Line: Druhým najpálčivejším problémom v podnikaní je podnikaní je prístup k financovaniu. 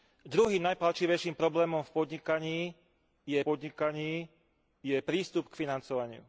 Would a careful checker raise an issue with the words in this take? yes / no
no